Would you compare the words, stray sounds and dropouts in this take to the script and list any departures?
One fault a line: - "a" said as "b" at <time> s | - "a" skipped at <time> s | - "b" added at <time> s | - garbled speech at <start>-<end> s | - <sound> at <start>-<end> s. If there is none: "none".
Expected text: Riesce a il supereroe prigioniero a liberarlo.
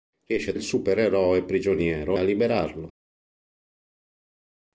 none